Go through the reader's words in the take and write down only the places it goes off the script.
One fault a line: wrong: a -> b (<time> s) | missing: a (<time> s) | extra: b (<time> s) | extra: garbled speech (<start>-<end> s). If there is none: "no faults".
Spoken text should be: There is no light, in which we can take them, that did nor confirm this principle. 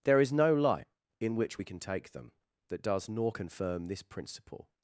wrong: did -> does (2.8 s)